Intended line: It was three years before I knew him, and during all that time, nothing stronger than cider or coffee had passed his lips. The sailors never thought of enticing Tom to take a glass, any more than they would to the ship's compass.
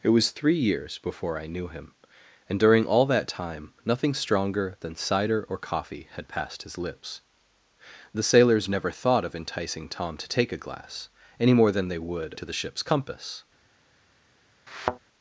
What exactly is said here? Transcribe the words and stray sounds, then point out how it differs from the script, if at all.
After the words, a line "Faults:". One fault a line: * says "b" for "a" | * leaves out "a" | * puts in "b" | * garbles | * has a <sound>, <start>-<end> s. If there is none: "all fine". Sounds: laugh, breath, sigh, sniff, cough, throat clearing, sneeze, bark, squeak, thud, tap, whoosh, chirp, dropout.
It was three years before I knew him, and during all that time, nothing stronger than cider or coffee had passed his lips. The sailors never thought of enticing Tom to take a glass, any more than they would to the ship's compass.
Faults:
* has a thud, 14.7-15.0 s